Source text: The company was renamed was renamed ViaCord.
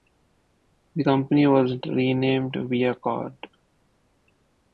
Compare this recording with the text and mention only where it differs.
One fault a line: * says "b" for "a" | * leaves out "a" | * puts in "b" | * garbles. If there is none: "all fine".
* leaves out "was renamed"